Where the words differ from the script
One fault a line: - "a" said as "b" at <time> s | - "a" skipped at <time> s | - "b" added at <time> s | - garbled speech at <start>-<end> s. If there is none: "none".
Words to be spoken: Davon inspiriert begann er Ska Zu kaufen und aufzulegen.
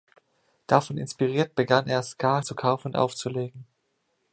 none